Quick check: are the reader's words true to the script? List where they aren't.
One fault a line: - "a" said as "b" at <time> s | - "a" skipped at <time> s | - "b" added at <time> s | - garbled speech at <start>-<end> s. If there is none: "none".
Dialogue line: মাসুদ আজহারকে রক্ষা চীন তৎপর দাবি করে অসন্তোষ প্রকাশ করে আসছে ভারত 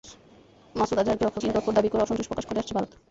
none